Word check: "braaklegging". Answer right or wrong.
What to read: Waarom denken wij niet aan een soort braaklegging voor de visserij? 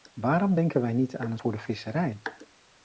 wrong